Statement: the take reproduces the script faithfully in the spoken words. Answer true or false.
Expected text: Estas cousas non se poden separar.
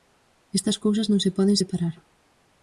true